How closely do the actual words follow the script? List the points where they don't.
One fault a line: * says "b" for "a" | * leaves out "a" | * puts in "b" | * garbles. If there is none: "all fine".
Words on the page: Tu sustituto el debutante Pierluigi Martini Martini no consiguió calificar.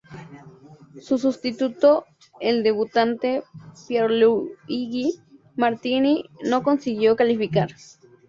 * says "Su" for "Tu"
* leaves out "Martini"